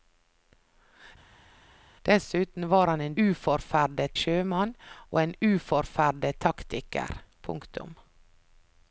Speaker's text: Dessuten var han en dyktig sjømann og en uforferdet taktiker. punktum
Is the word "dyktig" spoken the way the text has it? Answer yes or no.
no